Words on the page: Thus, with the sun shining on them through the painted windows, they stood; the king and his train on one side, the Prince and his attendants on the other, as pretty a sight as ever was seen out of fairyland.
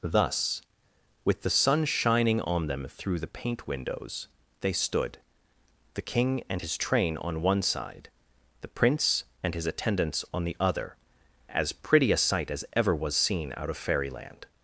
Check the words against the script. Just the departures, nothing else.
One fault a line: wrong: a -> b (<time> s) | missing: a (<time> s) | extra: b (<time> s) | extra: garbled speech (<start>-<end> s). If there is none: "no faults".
wrong: painted -> paint (3.2 s)